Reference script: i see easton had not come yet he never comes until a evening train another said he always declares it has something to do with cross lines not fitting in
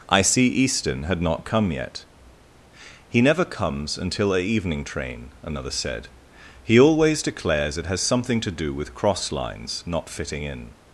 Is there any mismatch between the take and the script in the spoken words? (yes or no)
no